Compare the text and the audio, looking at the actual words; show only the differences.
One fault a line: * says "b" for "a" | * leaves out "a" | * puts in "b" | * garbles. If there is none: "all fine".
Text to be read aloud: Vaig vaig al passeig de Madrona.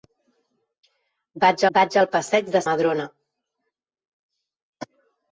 all fine